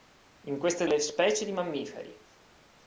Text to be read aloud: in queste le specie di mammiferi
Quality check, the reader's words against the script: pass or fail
pass